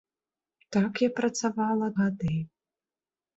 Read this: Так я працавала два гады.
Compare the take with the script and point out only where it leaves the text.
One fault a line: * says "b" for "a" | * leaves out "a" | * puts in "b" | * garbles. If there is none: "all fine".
* leaves out "два"